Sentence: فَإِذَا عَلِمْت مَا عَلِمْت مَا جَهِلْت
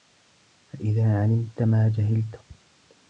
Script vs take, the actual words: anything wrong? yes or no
yes